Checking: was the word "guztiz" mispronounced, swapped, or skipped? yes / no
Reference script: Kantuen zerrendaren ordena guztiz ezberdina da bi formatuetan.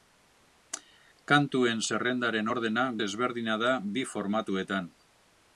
yes